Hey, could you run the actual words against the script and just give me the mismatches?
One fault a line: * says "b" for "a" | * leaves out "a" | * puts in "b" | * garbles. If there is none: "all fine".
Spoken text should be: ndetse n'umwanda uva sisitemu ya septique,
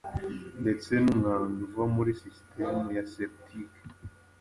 * puts in "muri"